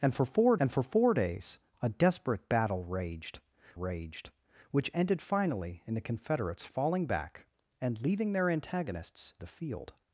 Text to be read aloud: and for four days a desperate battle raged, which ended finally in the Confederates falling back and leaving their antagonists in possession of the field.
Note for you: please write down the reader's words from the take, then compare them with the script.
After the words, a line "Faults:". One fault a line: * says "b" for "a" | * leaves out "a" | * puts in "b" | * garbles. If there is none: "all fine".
and for four and for four days a desperate battle raged raged, which ended finally in the Confederates falling back and leaving their antagonists the field.
Faults:
* puts in "and for four"
* puts in "raged"
* leaves out "in possession of"